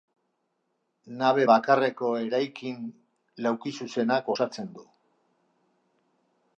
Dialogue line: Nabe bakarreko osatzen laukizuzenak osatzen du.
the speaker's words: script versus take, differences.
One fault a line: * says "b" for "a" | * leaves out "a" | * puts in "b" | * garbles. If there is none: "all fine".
* says "eraikin" for "osatzen"